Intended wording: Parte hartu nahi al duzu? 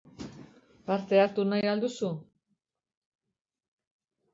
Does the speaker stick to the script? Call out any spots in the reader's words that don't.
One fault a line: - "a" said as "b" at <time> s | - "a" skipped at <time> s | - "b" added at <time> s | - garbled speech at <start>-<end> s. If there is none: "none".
none